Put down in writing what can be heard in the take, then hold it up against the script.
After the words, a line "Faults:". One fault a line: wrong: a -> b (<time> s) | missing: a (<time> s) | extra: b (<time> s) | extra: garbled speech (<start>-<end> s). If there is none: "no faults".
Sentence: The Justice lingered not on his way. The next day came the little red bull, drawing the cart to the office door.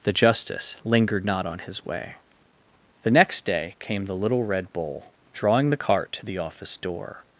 The Justice lingered not on his way. The next day came the little red bull, drawing the cart to the office door.
Faults:
no faults